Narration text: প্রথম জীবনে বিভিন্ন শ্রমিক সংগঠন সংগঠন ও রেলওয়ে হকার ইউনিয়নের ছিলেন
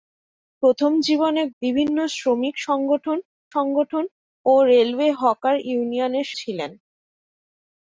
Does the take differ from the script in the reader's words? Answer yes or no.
no